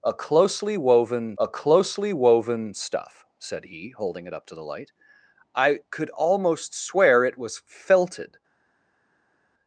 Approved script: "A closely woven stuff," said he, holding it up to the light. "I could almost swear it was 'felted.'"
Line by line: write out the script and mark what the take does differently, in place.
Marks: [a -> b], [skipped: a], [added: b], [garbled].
"A closely woven [added: a closely woven] stuff," said he, holding it up to the light. "I could almost swear it was 'felted.'"